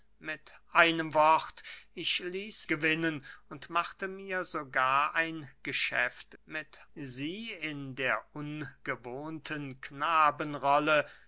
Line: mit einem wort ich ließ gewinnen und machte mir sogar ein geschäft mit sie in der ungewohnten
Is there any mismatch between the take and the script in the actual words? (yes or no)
no